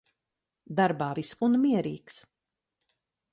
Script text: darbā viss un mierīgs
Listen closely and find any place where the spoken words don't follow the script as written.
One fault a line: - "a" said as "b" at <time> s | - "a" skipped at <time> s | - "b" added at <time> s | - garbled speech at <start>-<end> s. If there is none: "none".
none